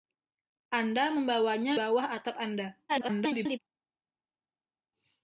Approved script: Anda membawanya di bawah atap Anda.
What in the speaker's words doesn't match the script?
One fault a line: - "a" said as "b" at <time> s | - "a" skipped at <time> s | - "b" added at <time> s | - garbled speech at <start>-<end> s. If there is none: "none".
- "di" skipped at 1.8 s
- garbled speech at 2.9-3.6 s